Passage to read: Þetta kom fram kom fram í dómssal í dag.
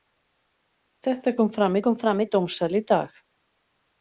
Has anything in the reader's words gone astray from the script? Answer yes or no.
no